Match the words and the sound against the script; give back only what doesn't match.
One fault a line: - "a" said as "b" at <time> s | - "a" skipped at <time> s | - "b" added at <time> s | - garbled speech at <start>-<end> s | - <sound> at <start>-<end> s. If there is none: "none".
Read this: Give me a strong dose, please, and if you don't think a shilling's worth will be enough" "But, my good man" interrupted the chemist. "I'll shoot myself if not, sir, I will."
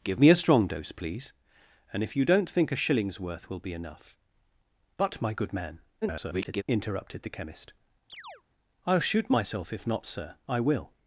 - garbled speech at 6.0-6.6 s
- chirp at 8.1-8.4 s